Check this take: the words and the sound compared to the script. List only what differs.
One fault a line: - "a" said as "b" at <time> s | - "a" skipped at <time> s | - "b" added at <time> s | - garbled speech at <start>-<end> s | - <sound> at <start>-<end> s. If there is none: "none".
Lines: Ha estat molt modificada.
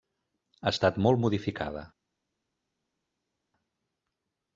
none